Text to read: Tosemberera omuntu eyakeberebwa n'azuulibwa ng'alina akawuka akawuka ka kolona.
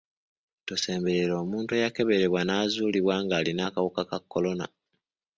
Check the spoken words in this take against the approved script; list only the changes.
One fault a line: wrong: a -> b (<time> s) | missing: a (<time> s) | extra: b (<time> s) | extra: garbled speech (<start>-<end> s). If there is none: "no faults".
missing: akawuka (4.0 s)